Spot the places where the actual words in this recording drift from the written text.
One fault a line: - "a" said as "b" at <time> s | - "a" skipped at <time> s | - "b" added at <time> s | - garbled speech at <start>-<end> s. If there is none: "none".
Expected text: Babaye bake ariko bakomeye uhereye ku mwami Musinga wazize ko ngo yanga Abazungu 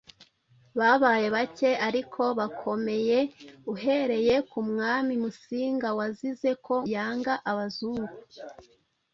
- "ngo" skipped at 6.8 s